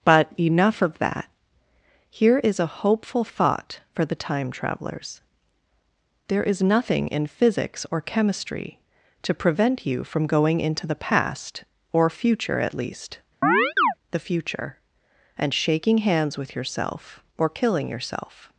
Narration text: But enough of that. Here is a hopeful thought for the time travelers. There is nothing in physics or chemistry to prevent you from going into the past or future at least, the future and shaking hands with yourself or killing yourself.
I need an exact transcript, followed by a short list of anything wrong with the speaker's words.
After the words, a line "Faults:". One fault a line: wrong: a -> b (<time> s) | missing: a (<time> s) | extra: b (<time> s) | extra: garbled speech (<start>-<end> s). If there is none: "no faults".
But enough of that. Here is a hopeful thought for the time travelers. There is nothing in physics or chemistry to prevent you from going into the past or future at least, the future and shaking hands with yourself or killing yourself.
Faults:
no faults